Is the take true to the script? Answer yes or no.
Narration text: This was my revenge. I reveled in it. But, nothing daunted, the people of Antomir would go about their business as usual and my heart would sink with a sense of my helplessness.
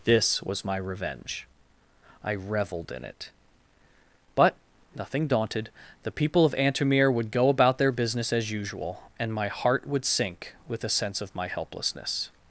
yes